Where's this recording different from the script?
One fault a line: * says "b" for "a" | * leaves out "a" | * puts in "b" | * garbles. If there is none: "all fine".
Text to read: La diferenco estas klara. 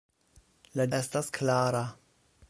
* leaves out "diferenco"